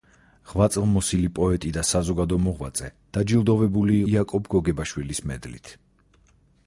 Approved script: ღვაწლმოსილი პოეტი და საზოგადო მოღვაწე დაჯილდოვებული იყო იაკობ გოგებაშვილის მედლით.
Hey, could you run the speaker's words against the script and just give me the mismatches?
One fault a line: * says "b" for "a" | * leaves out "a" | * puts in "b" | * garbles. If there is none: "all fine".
* leaves out "იყო"